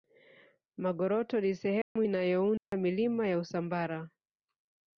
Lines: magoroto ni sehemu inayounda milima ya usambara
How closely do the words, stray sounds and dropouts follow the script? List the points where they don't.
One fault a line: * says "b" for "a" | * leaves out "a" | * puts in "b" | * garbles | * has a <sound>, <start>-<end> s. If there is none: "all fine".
* has a dropout, 1.8-2.0 s
* has a dropout, 2.6-2.7 s